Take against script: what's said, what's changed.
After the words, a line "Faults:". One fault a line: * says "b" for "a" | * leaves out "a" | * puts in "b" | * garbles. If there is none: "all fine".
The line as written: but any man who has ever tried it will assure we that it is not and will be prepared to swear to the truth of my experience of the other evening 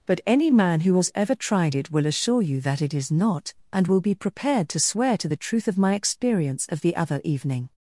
but any man who has ever tried it will assure you that it is not and will be prepared to swear to the truth of my experience of the other evening
Faults:
* says "you" for "we"